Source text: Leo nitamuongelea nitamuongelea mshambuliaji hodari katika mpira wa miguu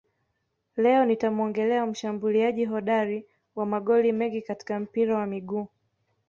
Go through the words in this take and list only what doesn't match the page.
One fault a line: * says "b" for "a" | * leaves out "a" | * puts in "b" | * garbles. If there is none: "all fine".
* leaves out "nitamuongelea"
* puts in "wa magoli mengi"